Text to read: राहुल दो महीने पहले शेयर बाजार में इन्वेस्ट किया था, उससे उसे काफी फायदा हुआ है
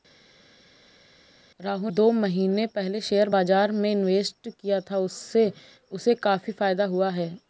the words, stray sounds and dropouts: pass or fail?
pass